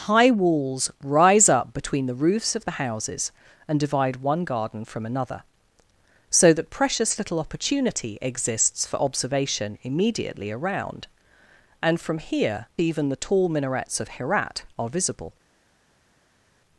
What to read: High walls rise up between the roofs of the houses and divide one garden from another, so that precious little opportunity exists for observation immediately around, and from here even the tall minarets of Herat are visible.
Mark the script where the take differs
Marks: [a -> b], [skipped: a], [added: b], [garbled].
High walls rise up between the roofs of the houses and divide one garden from another, so that precious little opportunity exists for observation immediately around, and from here even the tall minarets of Herat are visible.